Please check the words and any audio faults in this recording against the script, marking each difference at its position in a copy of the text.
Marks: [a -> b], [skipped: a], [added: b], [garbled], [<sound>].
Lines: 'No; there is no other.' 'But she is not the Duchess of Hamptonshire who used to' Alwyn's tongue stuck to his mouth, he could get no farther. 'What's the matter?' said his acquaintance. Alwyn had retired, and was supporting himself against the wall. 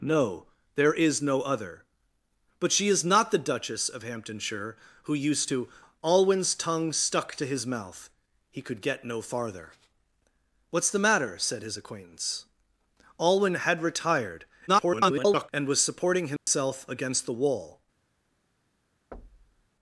'No; there is no other.' 'But she is not the Duchess of Hamptonshire who used to' Alwyn's tongue stuck to his mouth, he could get no farther. 'What's the matter?' said his acquaintance. Alwyn had retired, [garbled] and was supporting himself [dropout] against the wall. [thud]